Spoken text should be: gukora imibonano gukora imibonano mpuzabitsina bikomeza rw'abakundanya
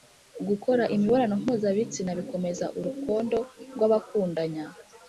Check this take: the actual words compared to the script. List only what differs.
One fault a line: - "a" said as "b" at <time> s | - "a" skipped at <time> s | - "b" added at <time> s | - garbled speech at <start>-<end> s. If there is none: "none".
- "gukora imibonano" skipped at 1.3 s
- "urukondo" added at 2.8 s